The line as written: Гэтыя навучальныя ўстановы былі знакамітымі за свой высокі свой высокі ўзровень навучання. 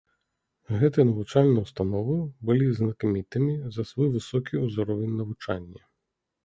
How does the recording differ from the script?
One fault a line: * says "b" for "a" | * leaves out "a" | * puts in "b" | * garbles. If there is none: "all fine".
* leaves out "свой высокі"